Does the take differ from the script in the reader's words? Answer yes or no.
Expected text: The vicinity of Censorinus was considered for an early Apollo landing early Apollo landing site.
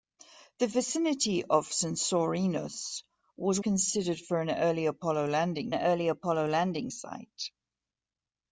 no